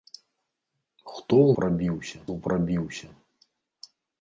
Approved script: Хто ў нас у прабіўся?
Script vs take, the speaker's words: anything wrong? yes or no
yes